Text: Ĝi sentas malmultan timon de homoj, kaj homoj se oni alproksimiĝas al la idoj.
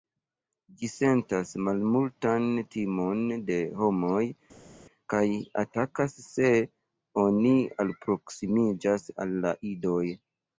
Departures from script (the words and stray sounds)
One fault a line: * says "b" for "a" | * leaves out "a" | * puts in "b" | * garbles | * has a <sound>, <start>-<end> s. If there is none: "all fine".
* says "atakas" for "homoj"